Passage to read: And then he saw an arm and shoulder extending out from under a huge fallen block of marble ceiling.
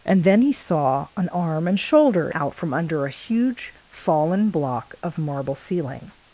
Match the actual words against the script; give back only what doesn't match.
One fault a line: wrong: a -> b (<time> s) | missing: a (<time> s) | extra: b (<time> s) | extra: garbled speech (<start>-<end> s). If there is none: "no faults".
missing: extending (2.3 s)